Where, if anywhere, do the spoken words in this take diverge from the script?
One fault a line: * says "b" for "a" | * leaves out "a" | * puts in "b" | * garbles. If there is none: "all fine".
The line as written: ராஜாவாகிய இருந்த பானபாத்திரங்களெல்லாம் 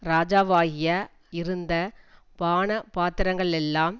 all fine